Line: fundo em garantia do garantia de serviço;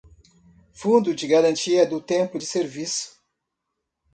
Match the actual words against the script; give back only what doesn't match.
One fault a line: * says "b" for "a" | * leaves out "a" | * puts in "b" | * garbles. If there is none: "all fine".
* says "de" for "em"
* says "tempo" for "garantia"